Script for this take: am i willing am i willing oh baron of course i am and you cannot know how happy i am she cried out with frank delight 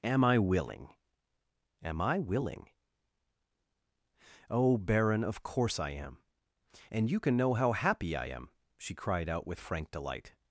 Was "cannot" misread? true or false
true